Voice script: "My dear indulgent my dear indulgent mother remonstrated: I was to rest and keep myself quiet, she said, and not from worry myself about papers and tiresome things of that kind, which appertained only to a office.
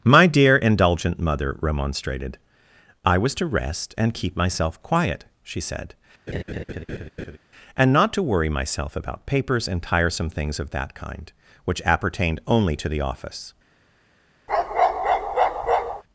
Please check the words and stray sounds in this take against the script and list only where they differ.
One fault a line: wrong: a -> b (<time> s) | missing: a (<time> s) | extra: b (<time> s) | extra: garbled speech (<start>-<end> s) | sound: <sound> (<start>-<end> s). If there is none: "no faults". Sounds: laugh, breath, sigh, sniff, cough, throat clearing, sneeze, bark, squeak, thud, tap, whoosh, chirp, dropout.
missing: my dear indulgent (1.2 s)
sound: laugh (6.3-7.4 s)
wrong: from -> to (8.1 s)
wrong: a -> the (12.9 s)
sound: bark (14.5-16.0 s)